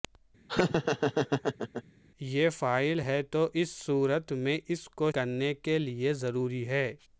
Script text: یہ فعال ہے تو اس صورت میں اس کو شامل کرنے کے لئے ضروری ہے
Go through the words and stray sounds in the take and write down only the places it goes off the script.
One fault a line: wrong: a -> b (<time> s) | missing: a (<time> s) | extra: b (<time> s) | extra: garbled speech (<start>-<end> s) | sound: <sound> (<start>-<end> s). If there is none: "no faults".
sound: laugh (0.5-1.8 s)
missing: شامل (5.1 s)